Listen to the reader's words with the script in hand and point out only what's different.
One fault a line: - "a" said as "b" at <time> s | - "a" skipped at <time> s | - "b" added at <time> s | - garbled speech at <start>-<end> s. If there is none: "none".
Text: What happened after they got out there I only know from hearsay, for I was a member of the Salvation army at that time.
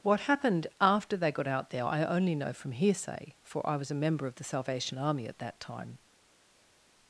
none